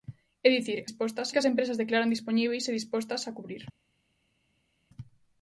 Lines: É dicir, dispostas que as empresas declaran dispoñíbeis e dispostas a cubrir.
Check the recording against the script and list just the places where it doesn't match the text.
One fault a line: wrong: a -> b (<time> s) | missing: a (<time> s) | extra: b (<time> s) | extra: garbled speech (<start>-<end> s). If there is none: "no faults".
no faults